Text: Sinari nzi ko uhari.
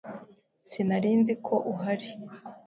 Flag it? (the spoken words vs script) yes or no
no